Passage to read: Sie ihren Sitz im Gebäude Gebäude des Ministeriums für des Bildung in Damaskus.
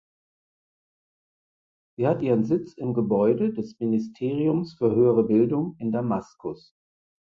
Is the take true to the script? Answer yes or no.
no